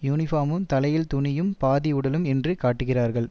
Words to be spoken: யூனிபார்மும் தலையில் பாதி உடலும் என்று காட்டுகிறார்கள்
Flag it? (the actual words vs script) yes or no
yes